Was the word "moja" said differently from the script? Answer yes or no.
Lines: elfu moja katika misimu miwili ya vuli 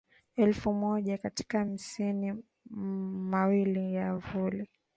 no